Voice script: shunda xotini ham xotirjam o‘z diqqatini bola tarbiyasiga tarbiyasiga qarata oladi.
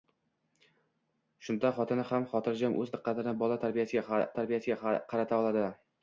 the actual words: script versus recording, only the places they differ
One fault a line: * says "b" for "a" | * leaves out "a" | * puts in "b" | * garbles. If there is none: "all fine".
all fine